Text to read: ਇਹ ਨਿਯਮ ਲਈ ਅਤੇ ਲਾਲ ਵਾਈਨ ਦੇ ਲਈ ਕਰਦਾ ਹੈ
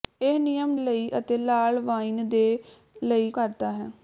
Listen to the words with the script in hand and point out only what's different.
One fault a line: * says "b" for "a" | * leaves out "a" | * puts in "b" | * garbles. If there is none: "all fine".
all fine